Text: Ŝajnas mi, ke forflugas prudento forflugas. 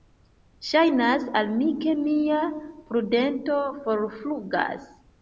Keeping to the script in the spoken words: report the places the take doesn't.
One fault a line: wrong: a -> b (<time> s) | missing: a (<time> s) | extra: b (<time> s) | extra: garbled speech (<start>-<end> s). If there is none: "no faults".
extra: al (1.4 s)
wrong: forflugas -> mia (2.0 s)